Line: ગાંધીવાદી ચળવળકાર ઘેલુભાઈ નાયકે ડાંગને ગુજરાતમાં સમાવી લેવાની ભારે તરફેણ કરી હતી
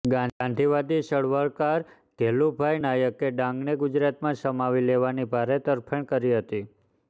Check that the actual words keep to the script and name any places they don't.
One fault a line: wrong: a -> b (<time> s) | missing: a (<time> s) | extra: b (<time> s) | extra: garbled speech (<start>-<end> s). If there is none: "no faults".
no faults